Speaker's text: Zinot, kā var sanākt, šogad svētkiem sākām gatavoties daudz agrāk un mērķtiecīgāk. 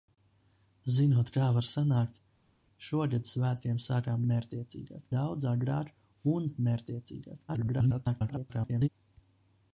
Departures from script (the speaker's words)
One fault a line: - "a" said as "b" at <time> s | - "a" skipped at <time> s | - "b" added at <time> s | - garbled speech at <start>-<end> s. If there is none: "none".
- "gatavoties" said as "mērķtiecīgāk" at 4.3 s
- garbled speech at 7.5-8.9 s